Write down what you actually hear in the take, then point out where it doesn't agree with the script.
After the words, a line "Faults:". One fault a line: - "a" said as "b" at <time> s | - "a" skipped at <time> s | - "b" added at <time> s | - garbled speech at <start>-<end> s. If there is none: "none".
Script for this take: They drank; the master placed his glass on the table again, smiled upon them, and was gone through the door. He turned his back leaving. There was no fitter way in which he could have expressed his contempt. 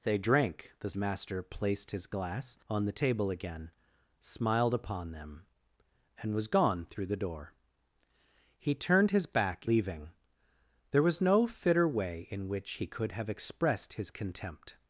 They drank; the master placed his glass on the table again, smiled upon them, and was gone through the door. He turned his back leaving. There was no fitter way in which he could have expressed his contempt.
Faults:
none